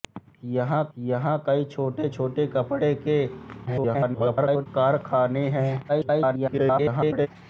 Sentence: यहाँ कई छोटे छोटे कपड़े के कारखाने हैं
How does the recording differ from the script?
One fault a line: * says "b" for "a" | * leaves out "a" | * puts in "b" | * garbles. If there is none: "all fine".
* puts in "यहाँ"
* garbles
* garbles